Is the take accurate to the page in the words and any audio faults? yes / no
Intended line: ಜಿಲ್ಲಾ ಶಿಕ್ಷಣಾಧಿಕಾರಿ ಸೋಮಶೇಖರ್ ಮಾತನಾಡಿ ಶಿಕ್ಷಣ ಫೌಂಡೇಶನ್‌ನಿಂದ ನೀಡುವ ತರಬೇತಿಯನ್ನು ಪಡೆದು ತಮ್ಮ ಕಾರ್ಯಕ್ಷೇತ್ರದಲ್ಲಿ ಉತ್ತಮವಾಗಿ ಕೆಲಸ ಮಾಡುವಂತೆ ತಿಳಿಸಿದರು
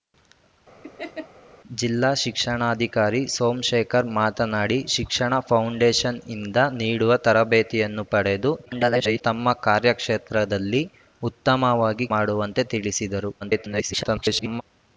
no